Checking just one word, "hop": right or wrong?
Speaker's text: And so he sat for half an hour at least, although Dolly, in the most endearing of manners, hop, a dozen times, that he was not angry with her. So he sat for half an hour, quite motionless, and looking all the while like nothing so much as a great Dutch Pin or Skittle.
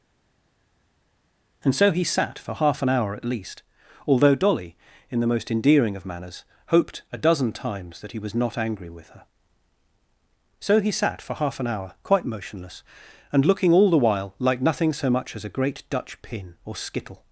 wrong